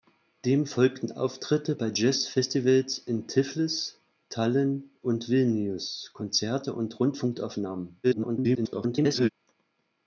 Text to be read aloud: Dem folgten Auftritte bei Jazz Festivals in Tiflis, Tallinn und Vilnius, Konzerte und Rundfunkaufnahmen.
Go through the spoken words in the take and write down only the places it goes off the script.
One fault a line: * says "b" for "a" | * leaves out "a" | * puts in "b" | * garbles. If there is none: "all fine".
* garbles